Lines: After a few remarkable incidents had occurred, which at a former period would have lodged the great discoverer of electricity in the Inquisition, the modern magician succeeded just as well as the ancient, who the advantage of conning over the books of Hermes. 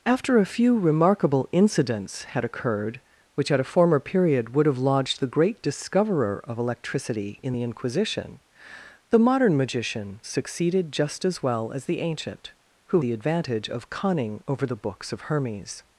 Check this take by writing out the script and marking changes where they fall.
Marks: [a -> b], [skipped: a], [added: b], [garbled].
After a few remarkable incidents had occurred, which at a former period would have lodged the great discoverer of electricity in the Inquisition, the modern magician succeeded just as well as the ancient, who the advantage of conning over the books of Hermes.